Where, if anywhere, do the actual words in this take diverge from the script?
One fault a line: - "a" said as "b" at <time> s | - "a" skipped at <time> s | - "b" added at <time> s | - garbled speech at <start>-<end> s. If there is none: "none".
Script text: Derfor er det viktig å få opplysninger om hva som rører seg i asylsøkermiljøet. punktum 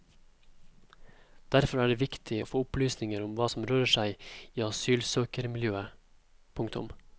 none